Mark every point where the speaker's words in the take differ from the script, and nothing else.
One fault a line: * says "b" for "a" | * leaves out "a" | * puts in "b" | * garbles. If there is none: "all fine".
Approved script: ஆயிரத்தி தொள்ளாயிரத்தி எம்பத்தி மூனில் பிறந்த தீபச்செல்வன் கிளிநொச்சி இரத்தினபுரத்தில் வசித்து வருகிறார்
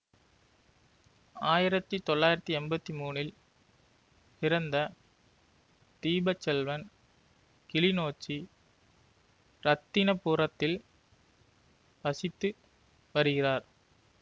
all fine